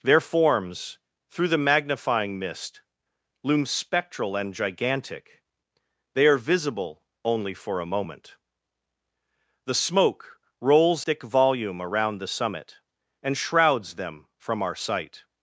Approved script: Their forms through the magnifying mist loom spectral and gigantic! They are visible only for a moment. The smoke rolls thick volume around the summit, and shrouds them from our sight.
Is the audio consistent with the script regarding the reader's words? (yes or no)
yes